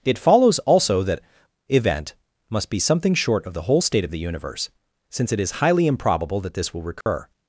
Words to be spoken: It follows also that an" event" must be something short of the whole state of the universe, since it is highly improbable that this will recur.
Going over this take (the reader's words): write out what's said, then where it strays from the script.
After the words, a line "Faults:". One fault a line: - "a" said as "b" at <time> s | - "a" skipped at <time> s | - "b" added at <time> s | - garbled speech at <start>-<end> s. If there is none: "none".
It follows also that" event" must be something short of the whole state of the universe, since it is highly improbable that this will recur.
Faults:
- "an" skipped at 1.2 s